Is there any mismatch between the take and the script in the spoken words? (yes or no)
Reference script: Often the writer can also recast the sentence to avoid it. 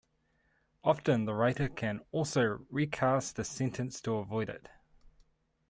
no